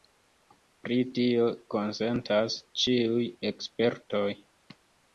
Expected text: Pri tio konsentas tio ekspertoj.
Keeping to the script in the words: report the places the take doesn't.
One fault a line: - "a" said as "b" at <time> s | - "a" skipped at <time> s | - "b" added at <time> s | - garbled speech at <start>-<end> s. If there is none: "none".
- "tio" said as "ĉiuj" at 2.9 s